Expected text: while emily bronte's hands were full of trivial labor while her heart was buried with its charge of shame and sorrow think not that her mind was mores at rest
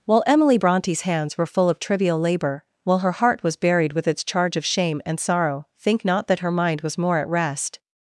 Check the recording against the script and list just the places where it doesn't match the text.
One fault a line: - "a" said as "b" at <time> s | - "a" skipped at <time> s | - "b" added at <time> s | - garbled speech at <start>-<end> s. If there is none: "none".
- "mores" said as "more" at 7.0 s